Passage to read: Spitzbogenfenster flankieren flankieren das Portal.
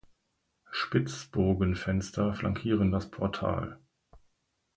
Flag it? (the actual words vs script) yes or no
yes